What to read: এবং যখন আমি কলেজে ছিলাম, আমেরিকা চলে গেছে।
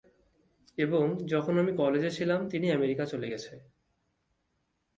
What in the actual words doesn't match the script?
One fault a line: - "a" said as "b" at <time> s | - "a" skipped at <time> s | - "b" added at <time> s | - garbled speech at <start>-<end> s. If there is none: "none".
- "তিনি" added at 2.5 s